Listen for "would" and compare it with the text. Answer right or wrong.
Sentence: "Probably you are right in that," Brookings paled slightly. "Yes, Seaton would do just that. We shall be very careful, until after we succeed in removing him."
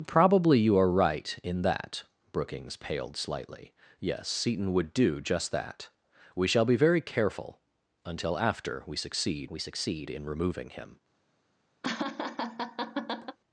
right